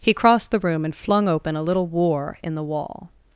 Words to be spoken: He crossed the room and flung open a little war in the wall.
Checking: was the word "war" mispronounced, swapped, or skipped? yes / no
no